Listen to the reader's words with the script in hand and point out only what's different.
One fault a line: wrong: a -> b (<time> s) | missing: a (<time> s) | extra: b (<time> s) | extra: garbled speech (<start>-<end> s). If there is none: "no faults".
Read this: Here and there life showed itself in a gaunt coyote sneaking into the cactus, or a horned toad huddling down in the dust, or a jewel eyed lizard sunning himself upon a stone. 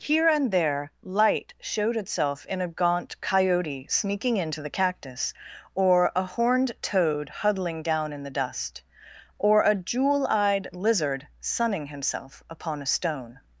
wrong: life -> light (1.0 s)